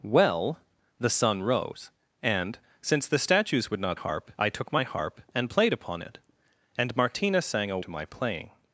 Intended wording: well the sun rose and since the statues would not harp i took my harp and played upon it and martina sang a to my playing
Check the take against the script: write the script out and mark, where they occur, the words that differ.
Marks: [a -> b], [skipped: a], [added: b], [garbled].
well the sun rose and since the statues would not harp i took my harp and played upon it and martina sang a to my playing